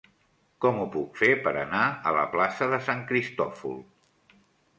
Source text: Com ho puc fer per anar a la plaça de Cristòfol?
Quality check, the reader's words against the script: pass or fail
fail